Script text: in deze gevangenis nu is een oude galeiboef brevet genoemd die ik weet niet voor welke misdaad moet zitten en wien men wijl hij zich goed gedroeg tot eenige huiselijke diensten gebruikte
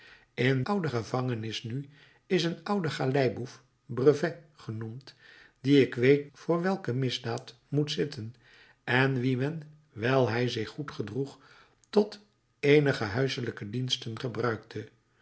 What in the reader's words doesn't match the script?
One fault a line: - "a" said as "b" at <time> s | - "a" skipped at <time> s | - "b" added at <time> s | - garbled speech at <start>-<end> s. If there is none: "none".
- "deze" said as "oude" at 0.6 s
- "niet" skipped at 6.3 s